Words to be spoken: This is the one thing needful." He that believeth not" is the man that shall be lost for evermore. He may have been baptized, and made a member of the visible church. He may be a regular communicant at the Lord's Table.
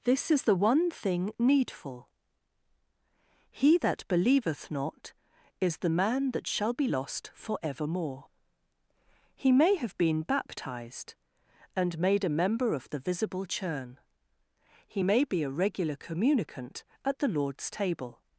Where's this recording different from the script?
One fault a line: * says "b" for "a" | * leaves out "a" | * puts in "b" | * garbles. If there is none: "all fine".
* says "churn" for "church"